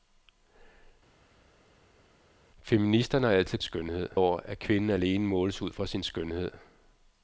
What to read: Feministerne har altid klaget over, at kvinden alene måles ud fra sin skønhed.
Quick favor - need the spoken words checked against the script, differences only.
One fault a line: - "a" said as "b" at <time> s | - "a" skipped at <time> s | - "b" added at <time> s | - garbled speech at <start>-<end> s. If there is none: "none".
- "klaget" said as "skønhed" at 3.6 s